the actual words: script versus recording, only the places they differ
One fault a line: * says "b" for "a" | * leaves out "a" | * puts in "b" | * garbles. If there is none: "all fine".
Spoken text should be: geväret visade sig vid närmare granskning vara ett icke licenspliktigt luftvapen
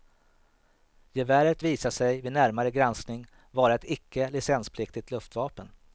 all fine